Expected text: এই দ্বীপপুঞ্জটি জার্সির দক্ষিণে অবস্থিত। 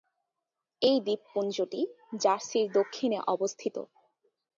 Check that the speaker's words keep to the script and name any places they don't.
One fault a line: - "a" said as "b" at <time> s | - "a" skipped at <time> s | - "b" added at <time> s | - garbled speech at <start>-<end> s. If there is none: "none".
none